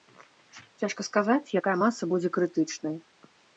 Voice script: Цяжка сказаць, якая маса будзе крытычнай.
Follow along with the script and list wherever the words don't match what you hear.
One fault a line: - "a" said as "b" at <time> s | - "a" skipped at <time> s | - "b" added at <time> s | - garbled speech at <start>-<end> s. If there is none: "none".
none